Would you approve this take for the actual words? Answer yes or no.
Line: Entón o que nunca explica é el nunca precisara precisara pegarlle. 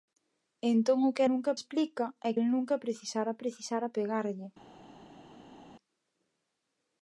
yes